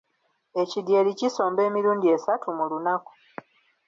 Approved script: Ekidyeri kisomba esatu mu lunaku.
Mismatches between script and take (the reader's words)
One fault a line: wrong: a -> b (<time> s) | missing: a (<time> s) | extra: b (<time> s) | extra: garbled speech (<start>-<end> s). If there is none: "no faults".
extra: emirundi (1.7 s)